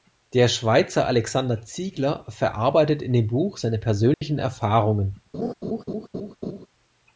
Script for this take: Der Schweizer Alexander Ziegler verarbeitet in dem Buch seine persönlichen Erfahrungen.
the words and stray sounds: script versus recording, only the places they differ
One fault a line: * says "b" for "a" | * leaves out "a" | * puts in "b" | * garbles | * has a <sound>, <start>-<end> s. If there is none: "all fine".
* has a dropout, 4.1-4.2 s
* has a laugh, 5.3-6.7 s